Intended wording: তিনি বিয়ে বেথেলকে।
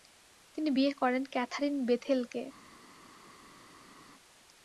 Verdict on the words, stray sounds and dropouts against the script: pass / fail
fail